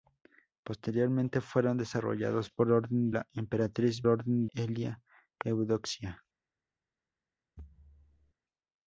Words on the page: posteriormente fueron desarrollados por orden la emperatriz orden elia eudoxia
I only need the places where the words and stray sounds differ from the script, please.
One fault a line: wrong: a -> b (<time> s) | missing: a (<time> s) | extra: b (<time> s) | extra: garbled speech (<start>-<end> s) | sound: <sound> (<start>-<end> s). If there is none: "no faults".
sound: thud (7.6-8.3 s)